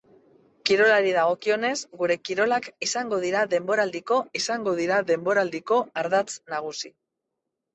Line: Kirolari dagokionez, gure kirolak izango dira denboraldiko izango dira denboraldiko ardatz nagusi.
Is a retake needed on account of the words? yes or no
no